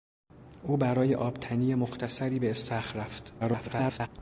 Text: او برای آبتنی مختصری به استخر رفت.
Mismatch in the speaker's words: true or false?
true